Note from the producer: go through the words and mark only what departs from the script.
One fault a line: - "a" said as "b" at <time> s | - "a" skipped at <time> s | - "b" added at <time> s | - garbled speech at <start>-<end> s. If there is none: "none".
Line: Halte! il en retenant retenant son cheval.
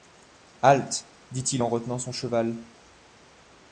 - "dit" added at 1.3 s
- "retenant" skipped at 2.0 s